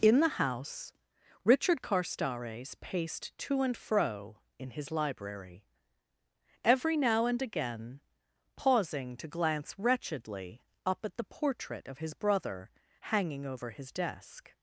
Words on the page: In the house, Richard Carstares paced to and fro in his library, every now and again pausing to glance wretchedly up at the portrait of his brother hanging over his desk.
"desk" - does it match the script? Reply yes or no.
yes